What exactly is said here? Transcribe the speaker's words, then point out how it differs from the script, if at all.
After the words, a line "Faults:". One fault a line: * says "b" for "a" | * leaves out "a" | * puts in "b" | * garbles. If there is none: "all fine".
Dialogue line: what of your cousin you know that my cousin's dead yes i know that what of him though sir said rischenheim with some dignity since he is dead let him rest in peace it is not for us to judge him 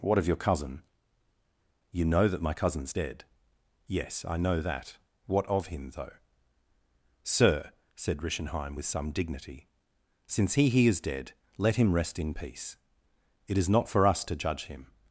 what of your cousin you know that my cousin's dead yes i know that what of him though sir said rischenheim with some dignity since he he is dead let him rest in peace it is not for us to judge him
Faults:
* puts in "he"